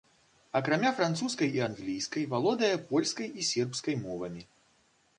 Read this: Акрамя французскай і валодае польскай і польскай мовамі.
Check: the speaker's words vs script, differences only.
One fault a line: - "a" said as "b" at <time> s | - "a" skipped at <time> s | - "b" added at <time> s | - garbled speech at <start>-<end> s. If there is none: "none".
- "англійскай" added at 1.7 s
- "польскай" said as "сербскай" at 3.5 s